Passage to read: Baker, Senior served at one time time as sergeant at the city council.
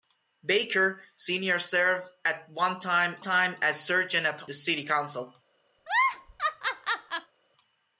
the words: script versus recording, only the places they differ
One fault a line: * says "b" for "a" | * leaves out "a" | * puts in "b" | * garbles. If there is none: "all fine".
all fine